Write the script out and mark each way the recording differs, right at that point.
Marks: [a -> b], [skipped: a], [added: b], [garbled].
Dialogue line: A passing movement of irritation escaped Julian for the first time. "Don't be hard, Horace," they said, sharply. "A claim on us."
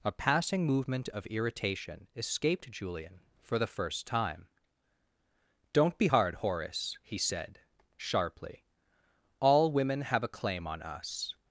A passing movement of irritation escaped Julian for the first time. "Don't be hard, Horace," [they -> he] said, sharply. [added: All women have] "A claim on us."